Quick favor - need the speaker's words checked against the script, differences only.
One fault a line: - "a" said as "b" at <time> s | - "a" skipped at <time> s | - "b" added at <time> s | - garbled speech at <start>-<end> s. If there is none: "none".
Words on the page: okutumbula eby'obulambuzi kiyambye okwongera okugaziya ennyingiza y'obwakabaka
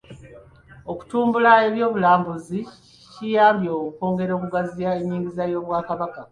none